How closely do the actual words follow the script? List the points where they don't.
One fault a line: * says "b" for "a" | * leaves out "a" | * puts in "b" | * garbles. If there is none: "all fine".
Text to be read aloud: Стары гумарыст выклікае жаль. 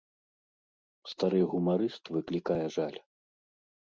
all fine